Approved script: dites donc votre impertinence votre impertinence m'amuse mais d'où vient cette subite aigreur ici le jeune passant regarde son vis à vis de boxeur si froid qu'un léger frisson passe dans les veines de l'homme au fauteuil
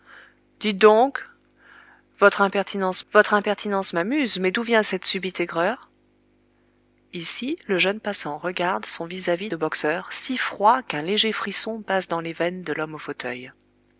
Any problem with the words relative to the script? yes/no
no